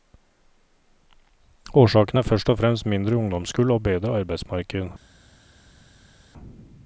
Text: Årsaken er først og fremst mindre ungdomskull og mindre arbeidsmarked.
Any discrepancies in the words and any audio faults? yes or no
yes